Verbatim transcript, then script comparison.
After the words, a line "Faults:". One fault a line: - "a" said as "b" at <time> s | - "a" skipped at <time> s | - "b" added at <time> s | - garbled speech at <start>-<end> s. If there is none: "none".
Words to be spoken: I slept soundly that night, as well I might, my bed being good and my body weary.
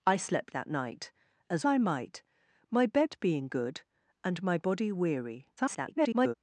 I slept that night, as I might, my bed being good and my body weary. [garbled]
Faults:
- "soundly" skipped at 0.6 s
- "well" skipped at 1.6 s
- garbled speech at 5.6-6.3 s